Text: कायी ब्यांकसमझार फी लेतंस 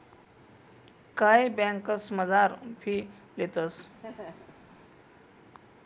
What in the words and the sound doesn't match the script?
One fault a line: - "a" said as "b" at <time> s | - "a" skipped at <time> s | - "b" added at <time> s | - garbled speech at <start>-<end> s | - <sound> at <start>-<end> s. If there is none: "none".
- laugh at 4.0-4.7 s